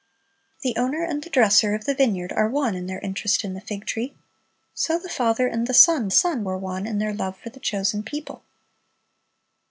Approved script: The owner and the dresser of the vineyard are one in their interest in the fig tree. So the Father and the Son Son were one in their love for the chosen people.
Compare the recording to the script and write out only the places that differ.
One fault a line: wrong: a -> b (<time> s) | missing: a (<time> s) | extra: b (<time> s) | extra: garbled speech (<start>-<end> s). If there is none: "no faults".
no faults